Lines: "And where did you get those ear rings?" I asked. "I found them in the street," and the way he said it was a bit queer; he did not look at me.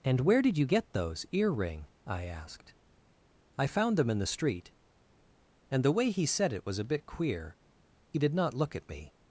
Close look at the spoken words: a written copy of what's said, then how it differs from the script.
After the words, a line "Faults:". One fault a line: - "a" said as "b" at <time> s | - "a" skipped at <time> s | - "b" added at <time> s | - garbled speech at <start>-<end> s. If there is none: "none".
"And where did you get those ear ring?" I asked. "I found them in the street," and the way he said it was a bit queer; he did not look at me.
Faults:
- "rings" said as "ring" at 1.5 s